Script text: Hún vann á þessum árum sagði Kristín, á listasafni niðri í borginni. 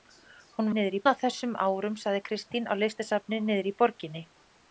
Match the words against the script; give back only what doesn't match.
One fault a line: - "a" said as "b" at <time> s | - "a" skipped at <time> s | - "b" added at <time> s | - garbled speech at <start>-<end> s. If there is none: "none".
- "vann" said as "niðri" at 0.8 s